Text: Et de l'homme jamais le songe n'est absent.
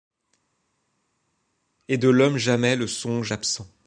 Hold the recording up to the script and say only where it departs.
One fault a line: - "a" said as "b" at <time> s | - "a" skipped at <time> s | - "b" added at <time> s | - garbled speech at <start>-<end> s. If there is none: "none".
- "n'est" skipped at 3.3 s